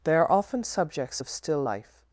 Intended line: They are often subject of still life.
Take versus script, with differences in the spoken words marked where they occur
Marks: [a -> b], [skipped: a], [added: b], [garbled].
They are often [subject -> subjects] of still life.